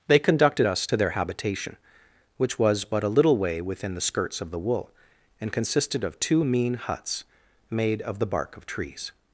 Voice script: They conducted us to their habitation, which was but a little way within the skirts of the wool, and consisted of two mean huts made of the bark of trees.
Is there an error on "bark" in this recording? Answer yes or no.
no